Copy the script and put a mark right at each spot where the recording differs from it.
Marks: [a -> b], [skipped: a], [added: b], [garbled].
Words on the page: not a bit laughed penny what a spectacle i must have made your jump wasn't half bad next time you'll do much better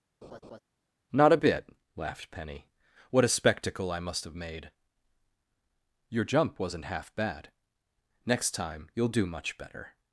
not a bit laughed penny what a spectacle i must have made your jump wasn't half bad next time you'll do much better